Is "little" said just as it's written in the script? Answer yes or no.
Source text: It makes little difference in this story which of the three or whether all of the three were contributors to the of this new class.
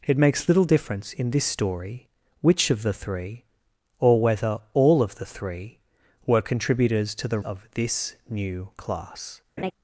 yes